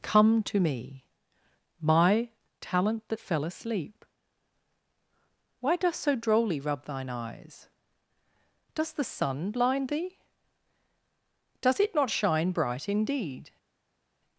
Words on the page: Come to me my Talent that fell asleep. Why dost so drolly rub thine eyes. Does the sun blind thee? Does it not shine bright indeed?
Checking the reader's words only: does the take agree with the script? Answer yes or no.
yes